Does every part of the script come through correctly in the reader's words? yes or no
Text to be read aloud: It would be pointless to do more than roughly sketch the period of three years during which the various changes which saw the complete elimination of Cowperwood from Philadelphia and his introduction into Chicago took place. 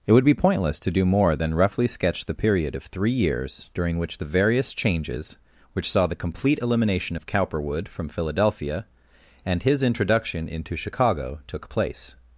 yes